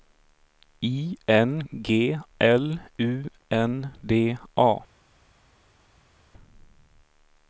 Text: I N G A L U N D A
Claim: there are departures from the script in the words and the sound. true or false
true